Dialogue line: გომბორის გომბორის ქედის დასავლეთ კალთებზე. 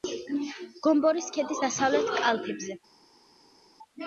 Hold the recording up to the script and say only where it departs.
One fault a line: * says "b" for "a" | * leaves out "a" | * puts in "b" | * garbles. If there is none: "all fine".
* leaves out "გომბორის"